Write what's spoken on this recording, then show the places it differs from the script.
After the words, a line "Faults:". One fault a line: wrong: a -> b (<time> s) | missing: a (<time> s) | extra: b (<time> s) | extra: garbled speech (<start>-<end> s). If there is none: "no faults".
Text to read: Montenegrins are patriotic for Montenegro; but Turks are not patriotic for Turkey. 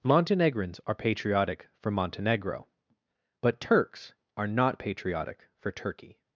Montenegrins are patriotic for Montenegro; but Turks are not patriotic for Turkey.
Faults:
no faults